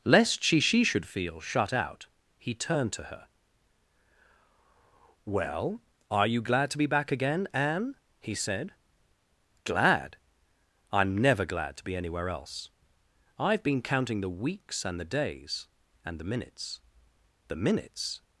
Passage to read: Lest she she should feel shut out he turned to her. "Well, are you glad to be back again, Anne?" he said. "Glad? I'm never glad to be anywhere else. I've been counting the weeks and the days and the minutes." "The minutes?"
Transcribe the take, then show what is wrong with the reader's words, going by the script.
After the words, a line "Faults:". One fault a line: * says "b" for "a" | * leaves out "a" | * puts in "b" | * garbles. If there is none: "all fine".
Lest she she should feel shut out he turned to her. "Well, are you glad to be back again, Anne?" he said. "Glad? I'm never glad to be anywhere else. I've been counting the weeks and the days and the minutes." "The minutes?"
Faults:
all fine